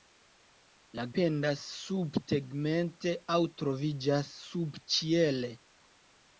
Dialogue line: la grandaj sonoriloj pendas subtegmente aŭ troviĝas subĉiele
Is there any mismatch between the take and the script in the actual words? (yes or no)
yes